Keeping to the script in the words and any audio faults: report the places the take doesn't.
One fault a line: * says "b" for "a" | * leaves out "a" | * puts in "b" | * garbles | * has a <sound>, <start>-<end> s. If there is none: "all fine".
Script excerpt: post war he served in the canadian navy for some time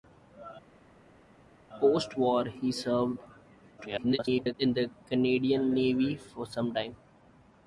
* garbles